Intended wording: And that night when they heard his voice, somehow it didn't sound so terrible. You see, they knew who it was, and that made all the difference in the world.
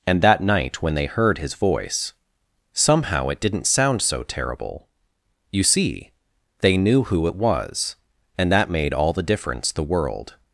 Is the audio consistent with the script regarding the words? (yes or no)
no